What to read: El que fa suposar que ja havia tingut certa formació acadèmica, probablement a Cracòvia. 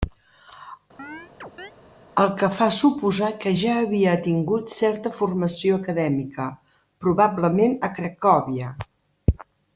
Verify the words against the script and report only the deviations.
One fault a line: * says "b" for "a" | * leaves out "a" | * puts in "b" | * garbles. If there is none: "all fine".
all fine